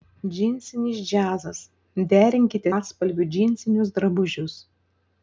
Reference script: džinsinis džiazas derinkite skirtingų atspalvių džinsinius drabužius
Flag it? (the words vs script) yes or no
yes